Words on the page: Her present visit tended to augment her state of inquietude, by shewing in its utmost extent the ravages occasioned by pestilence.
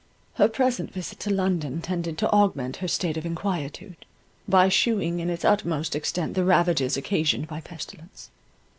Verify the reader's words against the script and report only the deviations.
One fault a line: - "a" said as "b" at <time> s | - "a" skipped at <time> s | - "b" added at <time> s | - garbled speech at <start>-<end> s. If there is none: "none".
- "to London" added at 1.2 s